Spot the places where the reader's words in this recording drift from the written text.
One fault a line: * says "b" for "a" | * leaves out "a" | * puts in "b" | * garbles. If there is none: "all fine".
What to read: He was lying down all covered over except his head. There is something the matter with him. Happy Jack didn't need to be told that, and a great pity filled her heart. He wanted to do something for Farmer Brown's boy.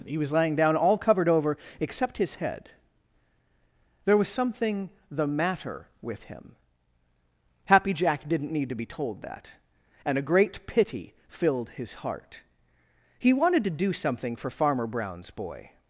* says "was" for "is"
* says "his" for "her"